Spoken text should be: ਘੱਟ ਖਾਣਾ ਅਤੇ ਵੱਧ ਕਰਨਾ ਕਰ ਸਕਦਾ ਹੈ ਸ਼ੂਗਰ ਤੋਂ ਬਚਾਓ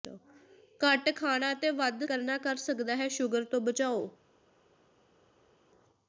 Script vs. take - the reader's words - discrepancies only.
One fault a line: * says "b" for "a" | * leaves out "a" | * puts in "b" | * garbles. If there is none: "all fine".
all fine